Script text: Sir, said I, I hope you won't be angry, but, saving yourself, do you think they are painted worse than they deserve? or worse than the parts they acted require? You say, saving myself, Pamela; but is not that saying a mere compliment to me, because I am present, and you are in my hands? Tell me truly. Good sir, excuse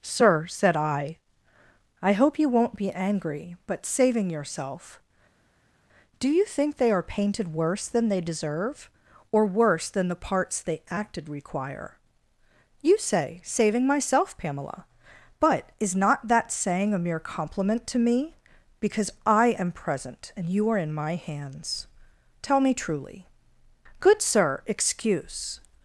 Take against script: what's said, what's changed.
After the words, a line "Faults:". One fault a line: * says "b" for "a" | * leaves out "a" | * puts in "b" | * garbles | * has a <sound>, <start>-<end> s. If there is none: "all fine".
Sir, said I, I hope you won't be angry, but, saving yourself, do you think they are painted worse than they deserve? or worse than the parts they acted require? You say, saving myself, Pamela; but is not that saying a mere compliment to me, because I am present, and you are in my hands? Tell me truly. Good sir, excuse
Faults:
all fine